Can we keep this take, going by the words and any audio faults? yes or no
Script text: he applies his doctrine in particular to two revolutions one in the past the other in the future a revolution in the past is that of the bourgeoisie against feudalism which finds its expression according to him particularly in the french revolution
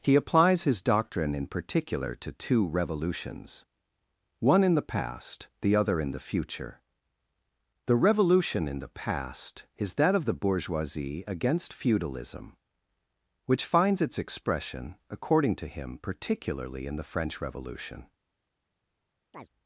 no